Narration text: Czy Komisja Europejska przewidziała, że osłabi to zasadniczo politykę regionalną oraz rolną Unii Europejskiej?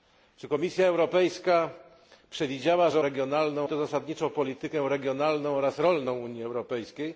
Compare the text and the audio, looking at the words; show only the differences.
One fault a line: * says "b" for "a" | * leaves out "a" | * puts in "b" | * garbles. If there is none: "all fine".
* says "regionalną" for "osłabi"